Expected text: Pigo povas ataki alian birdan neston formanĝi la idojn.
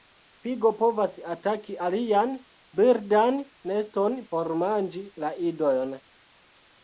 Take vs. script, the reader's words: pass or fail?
pass